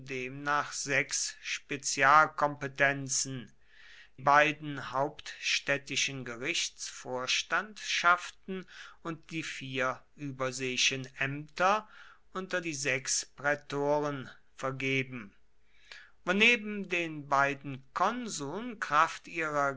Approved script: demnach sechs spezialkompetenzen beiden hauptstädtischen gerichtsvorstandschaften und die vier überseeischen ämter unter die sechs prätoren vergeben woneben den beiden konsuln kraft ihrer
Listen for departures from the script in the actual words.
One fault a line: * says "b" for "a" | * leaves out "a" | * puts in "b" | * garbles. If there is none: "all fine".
all fine